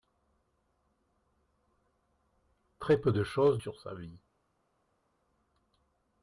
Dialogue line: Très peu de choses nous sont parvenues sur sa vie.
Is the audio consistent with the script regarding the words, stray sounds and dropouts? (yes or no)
no